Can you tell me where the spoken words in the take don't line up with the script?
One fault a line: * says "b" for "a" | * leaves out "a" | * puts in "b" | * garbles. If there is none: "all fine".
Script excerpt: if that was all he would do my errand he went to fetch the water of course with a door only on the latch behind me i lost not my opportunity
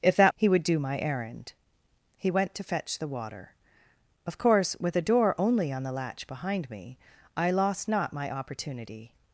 * leaves out "was all"